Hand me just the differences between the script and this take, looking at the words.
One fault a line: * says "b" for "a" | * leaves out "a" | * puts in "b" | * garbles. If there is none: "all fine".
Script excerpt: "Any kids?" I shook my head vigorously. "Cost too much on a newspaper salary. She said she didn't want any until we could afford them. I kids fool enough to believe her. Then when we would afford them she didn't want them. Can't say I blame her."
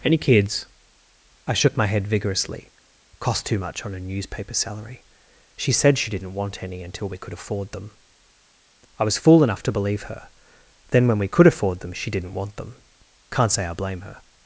* says "was" for "kids"
* says "could" for "would"